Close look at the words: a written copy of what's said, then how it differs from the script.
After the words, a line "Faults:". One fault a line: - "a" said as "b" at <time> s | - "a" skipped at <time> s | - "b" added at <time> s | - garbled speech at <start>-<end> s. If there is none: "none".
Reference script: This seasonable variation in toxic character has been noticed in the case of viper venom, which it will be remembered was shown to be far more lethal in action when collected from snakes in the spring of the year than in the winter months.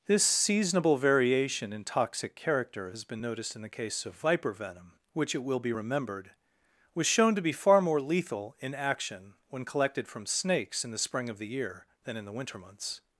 This seasonable variation in toxic character has been noticed in the case of viper venom, which it will be remembered was shown to be far more lethal in action when collected from snakes in the spring of the year than in the winter months.
Faults:
none